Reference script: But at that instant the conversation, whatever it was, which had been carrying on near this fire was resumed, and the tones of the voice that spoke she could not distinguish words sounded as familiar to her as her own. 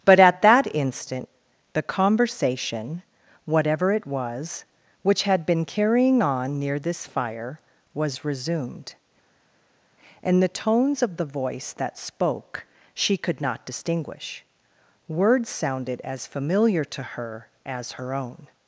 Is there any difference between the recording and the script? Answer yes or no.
no